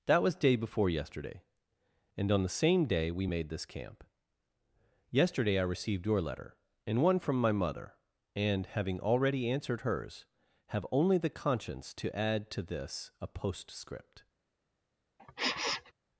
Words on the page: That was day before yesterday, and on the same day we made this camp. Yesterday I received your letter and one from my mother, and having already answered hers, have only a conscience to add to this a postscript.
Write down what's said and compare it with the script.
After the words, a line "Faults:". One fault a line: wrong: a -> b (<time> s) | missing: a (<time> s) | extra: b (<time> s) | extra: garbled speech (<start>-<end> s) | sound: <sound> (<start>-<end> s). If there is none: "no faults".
That was day before yesterday, and on the same day we made this camp. Yesterday I received your letter and one from my mother, and having already answered hers, have only the conscience to add to this a postscript.
Faults:
wrong: a -> the (11.2 s)
sound: sniff (15.2-15.9 s)